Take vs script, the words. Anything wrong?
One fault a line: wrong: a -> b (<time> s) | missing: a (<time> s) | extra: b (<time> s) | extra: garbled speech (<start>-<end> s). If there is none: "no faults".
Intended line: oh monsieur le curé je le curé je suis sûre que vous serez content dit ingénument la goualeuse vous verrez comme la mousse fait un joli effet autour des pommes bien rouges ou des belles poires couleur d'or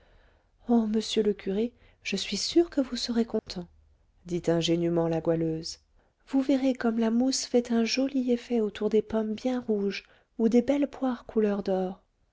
missing: le curé je (2.1 s)